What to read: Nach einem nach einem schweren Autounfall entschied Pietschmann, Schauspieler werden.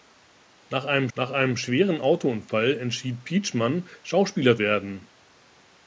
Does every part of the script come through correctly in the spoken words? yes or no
yes